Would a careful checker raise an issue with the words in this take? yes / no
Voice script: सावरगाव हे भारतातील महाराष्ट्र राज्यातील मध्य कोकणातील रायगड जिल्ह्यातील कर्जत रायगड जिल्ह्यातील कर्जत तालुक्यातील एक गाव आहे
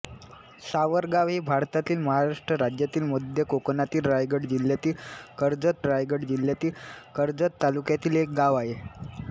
no